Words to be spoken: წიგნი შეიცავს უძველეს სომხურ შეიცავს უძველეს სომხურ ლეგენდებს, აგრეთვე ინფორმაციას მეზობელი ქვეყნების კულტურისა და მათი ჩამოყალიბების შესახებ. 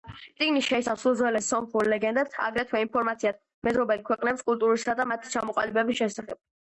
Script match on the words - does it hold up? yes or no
no